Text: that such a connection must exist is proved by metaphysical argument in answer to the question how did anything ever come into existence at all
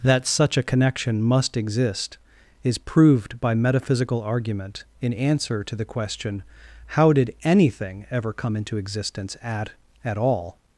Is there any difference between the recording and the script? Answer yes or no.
yes